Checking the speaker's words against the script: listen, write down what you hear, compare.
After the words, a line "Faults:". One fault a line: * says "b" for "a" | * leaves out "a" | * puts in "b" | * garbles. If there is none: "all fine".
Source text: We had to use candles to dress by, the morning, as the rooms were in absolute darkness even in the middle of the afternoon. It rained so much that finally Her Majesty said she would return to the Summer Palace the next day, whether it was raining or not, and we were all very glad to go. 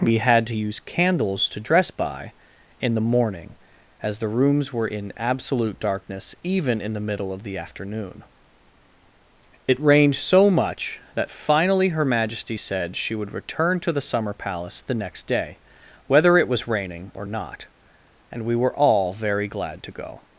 We had to use candles to dress by, in the morning, as the rooms were in absolute darkness even in the middle of the afternoon. It rained so much that finally Her Majesty said she would return to the Summer Palace the next day, whether it was raining or not, and we were all very glad to go.
Faults:
* puts in "in"